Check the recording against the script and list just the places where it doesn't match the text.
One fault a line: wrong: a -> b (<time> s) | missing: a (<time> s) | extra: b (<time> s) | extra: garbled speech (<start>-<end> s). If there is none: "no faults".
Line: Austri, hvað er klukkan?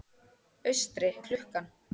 missing: hvað (1.1 s)